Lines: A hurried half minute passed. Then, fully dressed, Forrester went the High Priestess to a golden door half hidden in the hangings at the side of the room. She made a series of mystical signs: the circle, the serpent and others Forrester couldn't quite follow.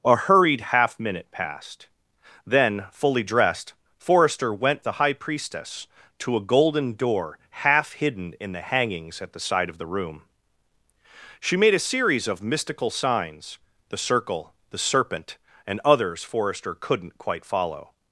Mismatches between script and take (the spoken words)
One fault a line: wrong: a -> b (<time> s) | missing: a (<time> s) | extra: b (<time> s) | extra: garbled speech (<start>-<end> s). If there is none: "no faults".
no faults